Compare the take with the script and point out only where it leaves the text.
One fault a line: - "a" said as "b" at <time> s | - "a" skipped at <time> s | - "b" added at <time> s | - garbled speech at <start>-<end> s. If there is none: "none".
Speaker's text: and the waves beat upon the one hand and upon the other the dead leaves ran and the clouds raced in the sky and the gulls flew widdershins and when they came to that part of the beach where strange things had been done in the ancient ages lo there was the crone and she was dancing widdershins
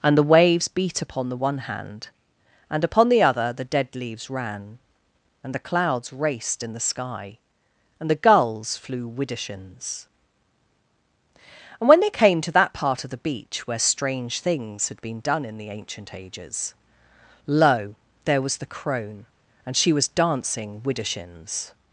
none